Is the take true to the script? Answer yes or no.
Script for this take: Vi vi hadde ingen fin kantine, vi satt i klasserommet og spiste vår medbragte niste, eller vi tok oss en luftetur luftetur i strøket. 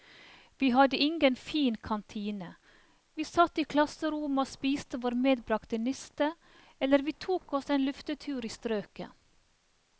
no